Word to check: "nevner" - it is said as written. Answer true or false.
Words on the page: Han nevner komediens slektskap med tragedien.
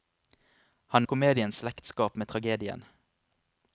false